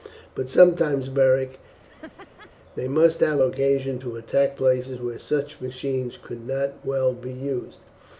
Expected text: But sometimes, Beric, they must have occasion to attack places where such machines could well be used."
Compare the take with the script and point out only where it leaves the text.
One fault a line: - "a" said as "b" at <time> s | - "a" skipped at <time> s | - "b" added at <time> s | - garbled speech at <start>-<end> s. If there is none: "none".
- "not" added at 6.5 s